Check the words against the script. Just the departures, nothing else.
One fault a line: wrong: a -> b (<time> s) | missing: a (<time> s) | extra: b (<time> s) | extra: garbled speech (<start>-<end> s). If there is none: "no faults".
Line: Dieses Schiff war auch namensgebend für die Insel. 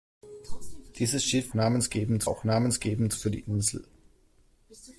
wrong: war -> namensgebend (1.5 s)